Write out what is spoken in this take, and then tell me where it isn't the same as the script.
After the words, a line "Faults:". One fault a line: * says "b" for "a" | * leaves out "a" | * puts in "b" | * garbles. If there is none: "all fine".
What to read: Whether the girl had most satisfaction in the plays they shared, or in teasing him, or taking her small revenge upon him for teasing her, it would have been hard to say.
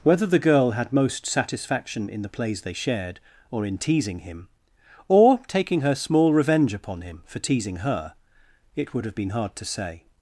Whether the girl had most satisfaction in the plays they shared, or in teasing him, or taking her small revenge upon him for teasing her, it would have been hard to say.
Faults:
all fine